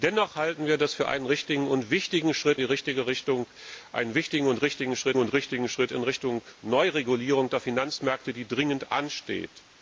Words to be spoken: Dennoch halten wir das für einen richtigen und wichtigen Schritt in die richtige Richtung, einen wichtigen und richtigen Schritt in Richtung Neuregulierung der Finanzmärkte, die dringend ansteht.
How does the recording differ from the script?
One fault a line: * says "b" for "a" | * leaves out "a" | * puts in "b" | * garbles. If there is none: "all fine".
* leaves out "in"
* puts in "und richtigen Schritt"